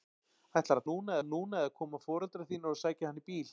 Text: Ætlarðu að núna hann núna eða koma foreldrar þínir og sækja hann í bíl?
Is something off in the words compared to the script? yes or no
no